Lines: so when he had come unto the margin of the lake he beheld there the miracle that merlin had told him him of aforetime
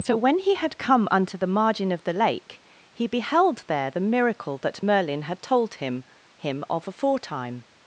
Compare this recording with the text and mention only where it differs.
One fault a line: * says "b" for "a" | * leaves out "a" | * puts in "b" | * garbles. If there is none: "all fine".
all fine